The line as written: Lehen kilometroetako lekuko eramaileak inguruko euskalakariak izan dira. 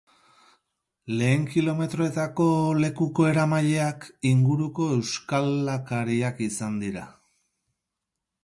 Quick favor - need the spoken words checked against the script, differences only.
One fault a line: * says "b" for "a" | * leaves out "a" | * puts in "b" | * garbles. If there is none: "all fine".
all fine